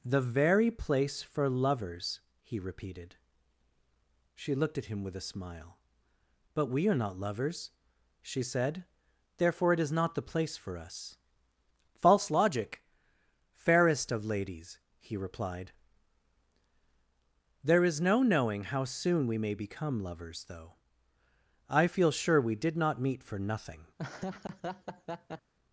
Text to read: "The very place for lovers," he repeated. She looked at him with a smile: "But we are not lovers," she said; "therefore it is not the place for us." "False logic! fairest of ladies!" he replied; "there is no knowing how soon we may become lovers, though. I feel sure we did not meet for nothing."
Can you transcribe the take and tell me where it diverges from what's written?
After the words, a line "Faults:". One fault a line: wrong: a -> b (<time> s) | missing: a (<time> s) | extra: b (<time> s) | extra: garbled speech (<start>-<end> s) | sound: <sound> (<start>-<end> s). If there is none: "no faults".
"The very place for lovers," he repeated. She looked at him with a smile: "But we are not lovers," she said; "therefore it is not the place for us." "False logic! fairest of ladies!" he replied; "there is no knowing how soon we may become lovers, though. I feel sure we did not meet for nothing."
Faults:
sound: laugh (24.0-25.5 s)